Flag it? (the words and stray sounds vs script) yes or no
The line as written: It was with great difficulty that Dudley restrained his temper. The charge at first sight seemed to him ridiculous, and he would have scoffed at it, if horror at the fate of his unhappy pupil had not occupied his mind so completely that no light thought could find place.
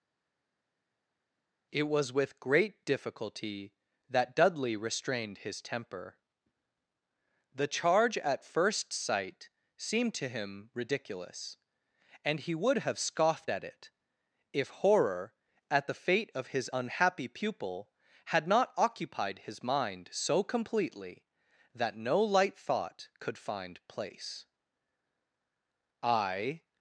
yes